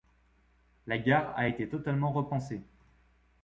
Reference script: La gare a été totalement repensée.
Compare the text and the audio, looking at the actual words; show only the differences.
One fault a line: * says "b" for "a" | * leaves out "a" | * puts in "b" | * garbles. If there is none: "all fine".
all fine